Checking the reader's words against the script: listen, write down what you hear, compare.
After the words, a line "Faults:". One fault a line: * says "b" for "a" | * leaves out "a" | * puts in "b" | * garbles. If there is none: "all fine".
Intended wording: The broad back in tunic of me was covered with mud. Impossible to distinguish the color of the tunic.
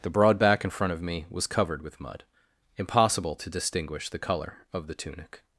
The broad back in front of me was covered with mud. Impossible to distinguish the color of the tunic.
Faults:
* says "front" for "tunic"